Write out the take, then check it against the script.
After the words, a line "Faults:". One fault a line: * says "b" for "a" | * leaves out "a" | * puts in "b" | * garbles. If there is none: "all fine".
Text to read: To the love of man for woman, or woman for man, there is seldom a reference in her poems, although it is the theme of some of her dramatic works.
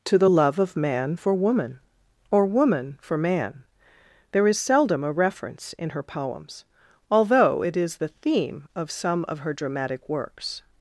To the love of man for woman, or woman for man, there is seldom a reference in her poems, although it is the theme of some of her dramatic works.
Faults:
all fine